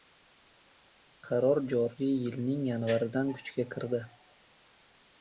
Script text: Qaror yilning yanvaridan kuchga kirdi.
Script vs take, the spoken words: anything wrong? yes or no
yes